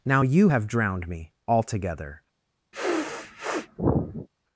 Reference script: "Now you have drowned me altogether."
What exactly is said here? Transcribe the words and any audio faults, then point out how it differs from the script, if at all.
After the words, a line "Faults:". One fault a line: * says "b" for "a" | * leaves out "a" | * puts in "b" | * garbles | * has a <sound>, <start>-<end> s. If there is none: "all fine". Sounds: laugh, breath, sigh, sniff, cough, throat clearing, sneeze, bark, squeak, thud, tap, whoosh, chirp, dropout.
"Now you have drowned me altogether."
Faults:
* has a sniff, 2.7-4.3 s